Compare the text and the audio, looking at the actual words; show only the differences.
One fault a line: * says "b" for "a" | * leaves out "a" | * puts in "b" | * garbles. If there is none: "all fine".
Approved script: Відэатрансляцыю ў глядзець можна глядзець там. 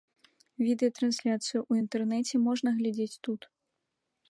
* says "інтэрнэце" for "глядзець"
* says "тут" for "там"